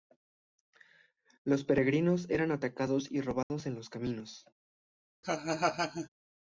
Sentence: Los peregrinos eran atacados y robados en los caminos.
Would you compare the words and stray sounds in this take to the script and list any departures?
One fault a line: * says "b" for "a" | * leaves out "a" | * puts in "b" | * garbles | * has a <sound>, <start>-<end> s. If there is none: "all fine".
* has a dropout, 3.4-3.5 s
* has a laugh, 5.2-6.1 s